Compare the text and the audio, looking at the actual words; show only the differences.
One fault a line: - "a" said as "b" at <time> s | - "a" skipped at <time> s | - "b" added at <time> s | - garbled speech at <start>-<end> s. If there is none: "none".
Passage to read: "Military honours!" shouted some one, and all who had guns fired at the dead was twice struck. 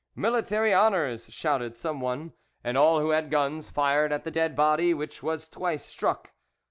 - "body which" added at 4.5 s